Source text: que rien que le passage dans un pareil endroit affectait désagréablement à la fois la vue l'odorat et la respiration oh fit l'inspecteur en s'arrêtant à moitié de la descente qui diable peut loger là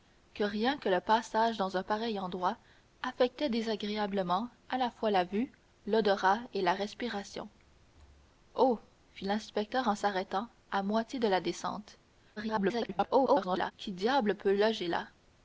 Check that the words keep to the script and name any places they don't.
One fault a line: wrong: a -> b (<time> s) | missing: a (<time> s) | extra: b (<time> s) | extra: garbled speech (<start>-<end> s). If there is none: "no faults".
extra: garbled speech (12.4-13.7 s)